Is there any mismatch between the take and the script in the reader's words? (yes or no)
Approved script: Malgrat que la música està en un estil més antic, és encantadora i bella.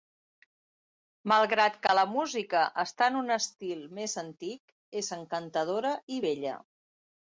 no